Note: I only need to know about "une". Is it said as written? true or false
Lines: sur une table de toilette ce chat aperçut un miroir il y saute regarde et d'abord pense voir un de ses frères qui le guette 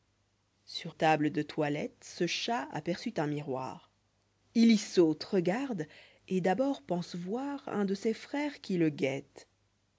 false